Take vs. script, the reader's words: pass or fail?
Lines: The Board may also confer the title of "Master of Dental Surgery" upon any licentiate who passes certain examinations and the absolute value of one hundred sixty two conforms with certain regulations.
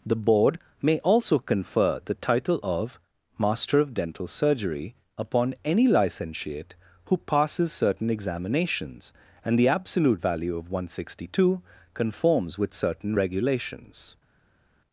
pass